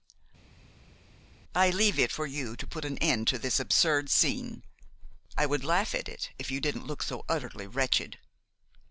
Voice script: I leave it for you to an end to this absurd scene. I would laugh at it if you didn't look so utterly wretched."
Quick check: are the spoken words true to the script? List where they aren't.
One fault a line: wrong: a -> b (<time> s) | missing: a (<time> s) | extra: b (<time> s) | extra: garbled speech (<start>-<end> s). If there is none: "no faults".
extra: put (2.6 s)